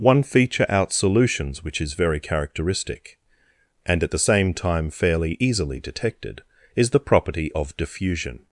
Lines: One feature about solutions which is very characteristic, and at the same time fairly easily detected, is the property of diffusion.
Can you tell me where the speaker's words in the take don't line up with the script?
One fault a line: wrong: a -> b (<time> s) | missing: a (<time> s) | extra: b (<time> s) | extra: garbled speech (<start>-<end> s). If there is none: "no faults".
wrong: about -> out (0.7 s)